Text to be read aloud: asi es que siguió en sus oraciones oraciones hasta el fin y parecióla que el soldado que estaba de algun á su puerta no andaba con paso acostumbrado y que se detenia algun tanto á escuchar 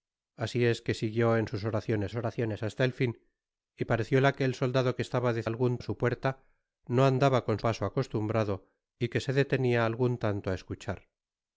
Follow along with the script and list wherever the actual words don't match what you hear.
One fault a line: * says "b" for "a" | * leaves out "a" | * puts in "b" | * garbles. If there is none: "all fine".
all fine